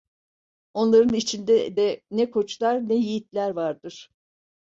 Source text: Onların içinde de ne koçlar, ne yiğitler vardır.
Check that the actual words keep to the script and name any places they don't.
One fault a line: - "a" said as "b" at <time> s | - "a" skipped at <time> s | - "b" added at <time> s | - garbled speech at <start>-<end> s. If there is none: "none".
none